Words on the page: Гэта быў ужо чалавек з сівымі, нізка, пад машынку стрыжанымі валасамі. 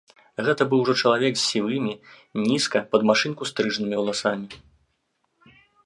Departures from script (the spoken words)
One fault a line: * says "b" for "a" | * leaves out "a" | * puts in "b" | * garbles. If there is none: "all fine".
all fine